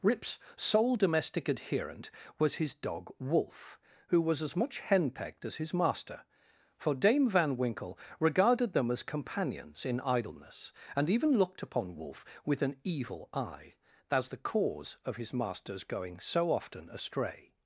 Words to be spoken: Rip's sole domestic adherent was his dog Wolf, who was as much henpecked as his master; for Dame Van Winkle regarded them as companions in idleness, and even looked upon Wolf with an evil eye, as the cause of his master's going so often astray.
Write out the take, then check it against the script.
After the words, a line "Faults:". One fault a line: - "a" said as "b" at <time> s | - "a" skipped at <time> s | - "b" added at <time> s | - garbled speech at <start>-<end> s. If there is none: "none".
Rip's sole domestic adherent was his dog Wolf, who was as much henpecked as his master; for Dame Van Winkle regarded them as companions in idleness, and even looked upon Wolf with an evil eye, as the cause of his master's going so often astray.
Faults:
none